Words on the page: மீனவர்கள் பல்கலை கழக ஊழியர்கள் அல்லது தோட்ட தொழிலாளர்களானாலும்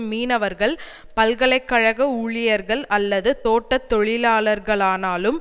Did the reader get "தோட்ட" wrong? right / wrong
right